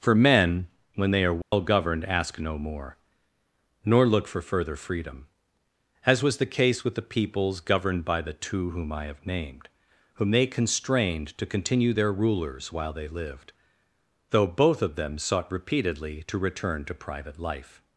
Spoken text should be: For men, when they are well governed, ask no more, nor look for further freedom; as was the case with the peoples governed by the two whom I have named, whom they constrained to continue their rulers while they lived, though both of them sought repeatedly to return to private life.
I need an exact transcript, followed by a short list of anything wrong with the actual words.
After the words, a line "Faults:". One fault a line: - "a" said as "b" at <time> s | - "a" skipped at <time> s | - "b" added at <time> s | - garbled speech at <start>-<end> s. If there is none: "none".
For men, when they are well governed, ask no more, nor look for further freedom; as was the case with the peoples governed by the two whom I have named, whom they constrained to continue their rulers while they lived, though both of them sought repeatedly to return to private life.
Faults:
none